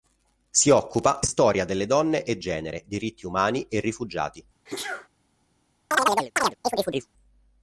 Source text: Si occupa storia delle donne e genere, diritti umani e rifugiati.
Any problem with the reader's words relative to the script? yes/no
no